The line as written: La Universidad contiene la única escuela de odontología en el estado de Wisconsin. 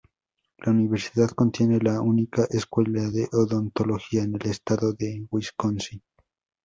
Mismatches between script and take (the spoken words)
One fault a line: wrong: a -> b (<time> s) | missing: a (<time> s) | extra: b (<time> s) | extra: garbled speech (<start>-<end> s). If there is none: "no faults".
no faults